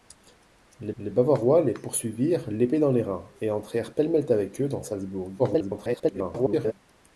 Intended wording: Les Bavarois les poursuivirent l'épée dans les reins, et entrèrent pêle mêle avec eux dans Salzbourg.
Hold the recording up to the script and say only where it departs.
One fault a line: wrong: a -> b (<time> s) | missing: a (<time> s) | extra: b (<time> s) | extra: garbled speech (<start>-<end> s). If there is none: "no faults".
extra: les (1.0 s)
extra: garbled speech (5.4-6.7 s)